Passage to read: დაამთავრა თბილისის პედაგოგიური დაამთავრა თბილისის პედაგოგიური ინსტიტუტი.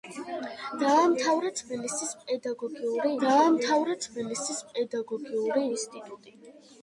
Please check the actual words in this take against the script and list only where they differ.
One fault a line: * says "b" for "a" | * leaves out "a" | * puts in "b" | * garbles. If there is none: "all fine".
all fine